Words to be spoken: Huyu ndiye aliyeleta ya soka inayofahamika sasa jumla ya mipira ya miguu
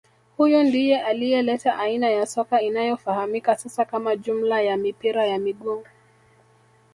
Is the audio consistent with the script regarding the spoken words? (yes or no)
no